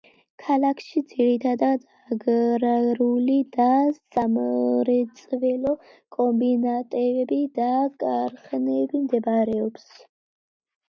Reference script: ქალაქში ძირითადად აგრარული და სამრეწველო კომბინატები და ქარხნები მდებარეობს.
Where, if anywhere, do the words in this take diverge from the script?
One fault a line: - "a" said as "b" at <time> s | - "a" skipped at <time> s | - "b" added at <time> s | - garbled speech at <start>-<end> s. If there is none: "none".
none